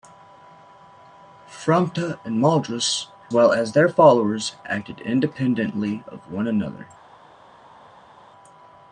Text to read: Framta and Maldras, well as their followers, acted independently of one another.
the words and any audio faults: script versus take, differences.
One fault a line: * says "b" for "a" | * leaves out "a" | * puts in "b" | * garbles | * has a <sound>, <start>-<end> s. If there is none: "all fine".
all fine